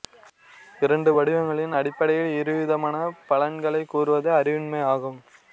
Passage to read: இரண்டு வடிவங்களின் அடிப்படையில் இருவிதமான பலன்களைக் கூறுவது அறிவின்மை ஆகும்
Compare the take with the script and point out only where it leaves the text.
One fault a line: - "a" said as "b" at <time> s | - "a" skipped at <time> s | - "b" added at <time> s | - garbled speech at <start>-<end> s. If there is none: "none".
none